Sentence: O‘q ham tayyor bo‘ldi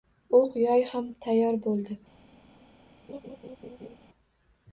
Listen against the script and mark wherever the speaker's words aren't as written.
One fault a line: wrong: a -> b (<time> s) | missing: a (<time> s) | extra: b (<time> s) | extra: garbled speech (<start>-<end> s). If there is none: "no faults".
extra: yoy (0.6 s)